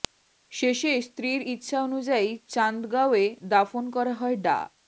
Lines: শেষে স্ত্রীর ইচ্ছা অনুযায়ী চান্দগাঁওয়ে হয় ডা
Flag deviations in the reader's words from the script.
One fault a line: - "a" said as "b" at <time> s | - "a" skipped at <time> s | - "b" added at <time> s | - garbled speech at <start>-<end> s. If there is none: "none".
- "দাফন করা" added at 3.5 s